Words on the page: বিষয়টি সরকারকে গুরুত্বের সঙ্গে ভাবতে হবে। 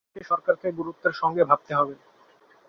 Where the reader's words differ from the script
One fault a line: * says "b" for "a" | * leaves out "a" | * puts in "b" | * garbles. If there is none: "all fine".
all fine